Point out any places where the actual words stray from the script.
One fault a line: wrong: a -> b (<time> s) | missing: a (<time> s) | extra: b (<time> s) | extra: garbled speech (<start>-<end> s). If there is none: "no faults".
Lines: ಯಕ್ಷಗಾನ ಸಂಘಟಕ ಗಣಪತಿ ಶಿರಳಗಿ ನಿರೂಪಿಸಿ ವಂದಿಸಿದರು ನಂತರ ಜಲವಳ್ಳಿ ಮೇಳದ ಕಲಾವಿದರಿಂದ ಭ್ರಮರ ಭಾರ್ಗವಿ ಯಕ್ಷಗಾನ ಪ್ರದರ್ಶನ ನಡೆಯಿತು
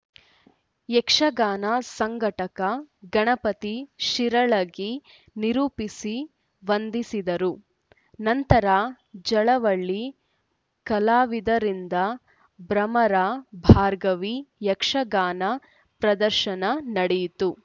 missing: ಮೇಳದ (10.0 s)